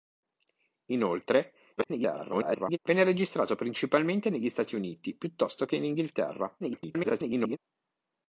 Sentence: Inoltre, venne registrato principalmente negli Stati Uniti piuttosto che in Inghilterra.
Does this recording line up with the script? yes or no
no